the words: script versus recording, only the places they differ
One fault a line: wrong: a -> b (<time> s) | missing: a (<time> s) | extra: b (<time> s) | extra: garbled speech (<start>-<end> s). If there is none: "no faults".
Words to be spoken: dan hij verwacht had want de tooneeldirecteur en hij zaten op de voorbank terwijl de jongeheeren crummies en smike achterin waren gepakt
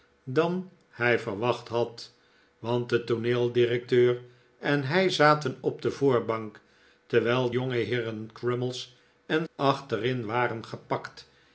missing: de (7.5 s)
missing: smike (9.5 s)